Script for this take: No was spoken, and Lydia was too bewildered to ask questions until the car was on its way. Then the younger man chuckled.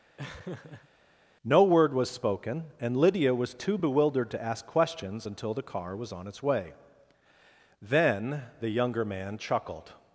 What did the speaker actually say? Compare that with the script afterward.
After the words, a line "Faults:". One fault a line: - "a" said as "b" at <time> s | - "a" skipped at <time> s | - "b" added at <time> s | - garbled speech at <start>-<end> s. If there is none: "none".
No word was spoken, and Lydia was too bewildered to ask questions until the car was on its way. Then the younger man chuckled.
Faults:
- "word" added at 1.6 s